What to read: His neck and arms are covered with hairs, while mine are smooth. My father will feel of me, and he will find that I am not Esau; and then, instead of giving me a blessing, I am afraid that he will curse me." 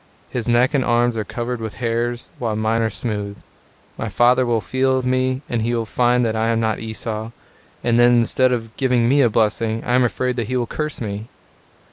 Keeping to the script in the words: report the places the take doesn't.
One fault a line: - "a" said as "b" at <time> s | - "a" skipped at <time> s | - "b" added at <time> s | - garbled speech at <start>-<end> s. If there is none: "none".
none